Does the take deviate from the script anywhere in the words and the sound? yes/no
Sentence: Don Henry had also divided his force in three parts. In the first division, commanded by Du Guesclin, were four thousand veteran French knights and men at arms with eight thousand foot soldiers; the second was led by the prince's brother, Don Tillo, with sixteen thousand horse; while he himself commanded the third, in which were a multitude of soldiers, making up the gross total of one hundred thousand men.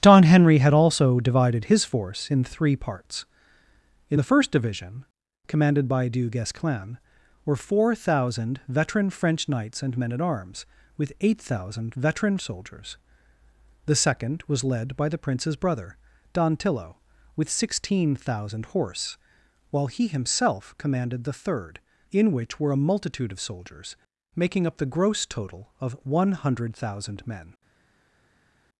yes